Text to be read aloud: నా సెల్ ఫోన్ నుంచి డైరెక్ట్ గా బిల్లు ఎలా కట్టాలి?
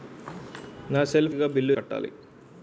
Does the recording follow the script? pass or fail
fail